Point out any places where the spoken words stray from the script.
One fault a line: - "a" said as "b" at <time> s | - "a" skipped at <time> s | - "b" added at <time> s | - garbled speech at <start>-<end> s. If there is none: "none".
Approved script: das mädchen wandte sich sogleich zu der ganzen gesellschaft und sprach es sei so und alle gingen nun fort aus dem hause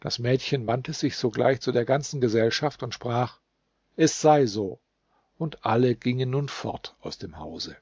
none